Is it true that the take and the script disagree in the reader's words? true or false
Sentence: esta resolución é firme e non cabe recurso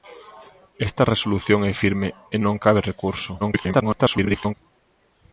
true